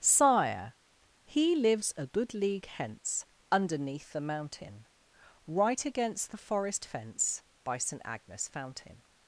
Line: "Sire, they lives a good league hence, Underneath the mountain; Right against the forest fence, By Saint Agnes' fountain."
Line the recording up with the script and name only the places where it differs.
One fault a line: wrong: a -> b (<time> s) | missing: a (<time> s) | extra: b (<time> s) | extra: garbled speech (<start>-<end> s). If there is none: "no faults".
wrong: they -> he (1.2 s)